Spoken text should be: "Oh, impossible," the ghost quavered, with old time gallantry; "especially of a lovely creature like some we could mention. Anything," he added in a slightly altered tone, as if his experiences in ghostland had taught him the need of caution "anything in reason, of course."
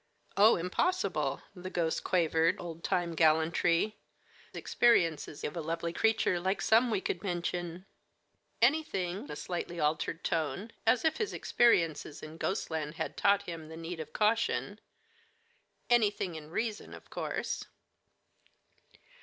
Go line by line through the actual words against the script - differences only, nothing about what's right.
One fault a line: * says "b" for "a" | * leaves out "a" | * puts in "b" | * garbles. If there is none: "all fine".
* leaves out "with"
* says "experiences" for "especially"
* leaves out "he added in"